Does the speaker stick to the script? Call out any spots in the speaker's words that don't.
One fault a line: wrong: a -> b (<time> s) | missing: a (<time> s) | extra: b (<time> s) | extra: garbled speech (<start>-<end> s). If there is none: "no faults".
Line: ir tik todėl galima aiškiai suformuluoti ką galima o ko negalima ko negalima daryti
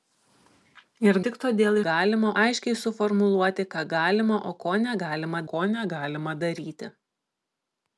no faults